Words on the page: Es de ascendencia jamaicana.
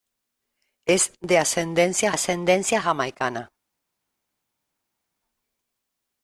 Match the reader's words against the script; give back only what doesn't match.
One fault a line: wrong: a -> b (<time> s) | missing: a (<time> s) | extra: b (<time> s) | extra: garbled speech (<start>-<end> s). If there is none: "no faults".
extra: ascendencia (2.1 s)